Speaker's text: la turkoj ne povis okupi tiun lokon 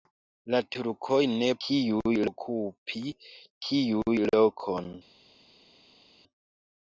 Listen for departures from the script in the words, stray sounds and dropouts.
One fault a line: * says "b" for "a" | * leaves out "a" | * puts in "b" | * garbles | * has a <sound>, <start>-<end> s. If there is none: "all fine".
* says "tiun" for "povis"